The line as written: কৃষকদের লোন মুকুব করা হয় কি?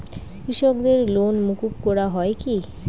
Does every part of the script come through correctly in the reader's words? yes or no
yes